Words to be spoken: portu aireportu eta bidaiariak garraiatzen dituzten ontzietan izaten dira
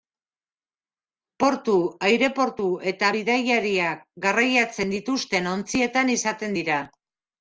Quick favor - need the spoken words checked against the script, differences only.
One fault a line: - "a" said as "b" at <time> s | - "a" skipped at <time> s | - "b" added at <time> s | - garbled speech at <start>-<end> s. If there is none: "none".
none